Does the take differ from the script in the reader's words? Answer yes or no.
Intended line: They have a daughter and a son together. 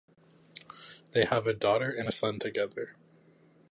no